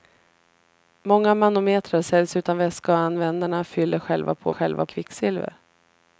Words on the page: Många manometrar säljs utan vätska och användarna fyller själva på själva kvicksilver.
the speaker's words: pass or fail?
pass